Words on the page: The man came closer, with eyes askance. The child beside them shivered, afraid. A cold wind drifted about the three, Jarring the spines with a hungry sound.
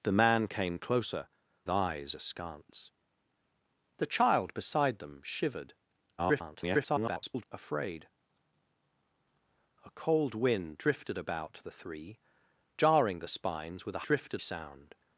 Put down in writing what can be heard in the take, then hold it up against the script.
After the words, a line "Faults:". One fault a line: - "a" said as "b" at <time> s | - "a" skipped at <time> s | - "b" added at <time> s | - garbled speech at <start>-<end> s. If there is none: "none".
The man came closer, eyes askance. The child beside them shivered, [garbled] afraid. A cold wind drifted about the three, Jarring the spines with a drifted sound.
Faults:
- "with" skipped at 1.3 s
- garbled speech at 6.2-7.4 s
- "hungry" said as "drifted" at 14.0 s